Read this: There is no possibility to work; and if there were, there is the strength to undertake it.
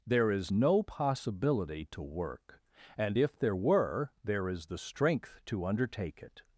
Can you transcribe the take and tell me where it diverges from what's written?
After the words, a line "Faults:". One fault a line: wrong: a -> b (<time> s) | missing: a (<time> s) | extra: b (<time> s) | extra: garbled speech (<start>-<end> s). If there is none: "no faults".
There is no possibility to work; and if there were, there is the strength to undertake it.
Faults:
no faults